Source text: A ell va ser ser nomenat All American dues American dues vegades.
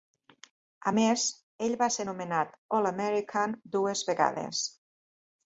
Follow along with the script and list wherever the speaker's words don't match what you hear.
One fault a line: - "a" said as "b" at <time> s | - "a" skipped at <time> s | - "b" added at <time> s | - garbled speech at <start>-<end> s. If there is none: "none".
- "més" added at 1.0 s
- "ser" skipped at 2.1 s
- "American dues" skipped at 4.0 s